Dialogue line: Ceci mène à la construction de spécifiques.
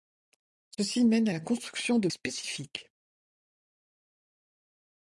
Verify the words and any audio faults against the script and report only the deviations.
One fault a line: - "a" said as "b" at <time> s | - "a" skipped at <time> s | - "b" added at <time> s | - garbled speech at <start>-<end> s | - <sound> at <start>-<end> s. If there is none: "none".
none